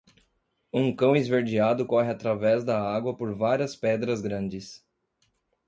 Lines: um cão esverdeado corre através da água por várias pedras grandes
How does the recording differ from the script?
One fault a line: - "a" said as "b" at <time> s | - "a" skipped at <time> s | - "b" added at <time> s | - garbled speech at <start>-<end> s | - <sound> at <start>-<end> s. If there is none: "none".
none